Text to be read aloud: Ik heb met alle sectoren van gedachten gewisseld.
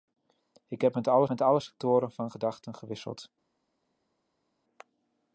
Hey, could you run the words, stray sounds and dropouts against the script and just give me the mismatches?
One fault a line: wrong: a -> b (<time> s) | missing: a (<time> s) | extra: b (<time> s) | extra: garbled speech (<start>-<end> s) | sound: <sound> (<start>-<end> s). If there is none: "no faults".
extra: met alle (1.3 s)